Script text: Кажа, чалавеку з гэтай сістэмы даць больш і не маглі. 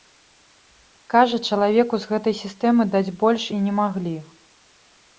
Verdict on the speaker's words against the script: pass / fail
pass